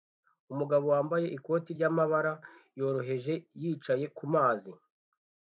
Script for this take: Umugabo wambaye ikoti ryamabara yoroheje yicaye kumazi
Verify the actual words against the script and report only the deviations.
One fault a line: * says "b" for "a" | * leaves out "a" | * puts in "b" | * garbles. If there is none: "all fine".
all fine